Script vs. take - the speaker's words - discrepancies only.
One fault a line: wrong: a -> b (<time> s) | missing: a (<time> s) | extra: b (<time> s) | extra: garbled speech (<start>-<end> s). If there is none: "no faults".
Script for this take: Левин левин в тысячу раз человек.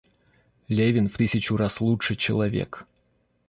missing: левин (1.1 s)
extra: лучше (1.8 s)